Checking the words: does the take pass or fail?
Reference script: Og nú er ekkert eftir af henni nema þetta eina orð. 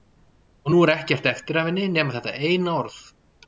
pass